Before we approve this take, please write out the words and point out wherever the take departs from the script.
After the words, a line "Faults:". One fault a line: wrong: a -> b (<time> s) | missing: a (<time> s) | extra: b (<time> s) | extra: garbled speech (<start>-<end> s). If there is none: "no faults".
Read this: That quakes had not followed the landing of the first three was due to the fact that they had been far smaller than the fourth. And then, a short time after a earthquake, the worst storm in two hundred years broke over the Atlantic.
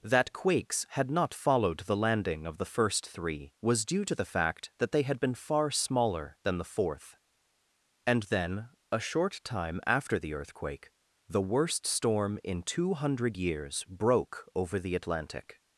That quakes had not followed the landing of the first three was due to the fact that they had been far smaller than the fourth. And then, a short time after the earthquake, the worst storm in two hundred years broke over the Atlantic.
Faults:
wrong: a -> the (10.2 s)